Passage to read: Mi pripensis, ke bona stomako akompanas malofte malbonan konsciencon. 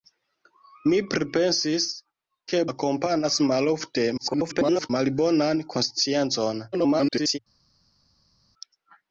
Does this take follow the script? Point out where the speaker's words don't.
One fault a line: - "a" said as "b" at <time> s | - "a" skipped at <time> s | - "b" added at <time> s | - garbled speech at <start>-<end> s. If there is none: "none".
- "bona stomako" skipped at 2.6 s
- garbled speech at 4.2-4.9 s
- garbled speech at 6.7-7.4 s